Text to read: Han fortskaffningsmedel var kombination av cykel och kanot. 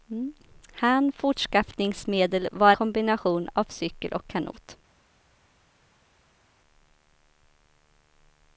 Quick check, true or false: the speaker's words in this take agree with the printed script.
true